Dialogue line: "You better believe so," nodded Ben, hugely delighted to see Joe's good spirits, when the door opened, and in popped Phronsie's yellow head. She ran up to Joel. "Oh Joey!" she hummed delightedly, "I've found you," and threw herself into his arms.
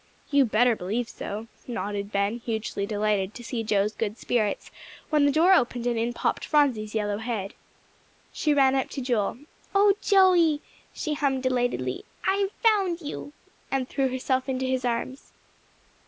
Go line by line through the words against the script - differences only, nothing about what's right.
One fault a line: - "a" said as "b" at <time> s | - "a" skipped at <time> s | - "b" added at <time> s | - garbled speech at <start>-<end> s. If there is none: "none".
none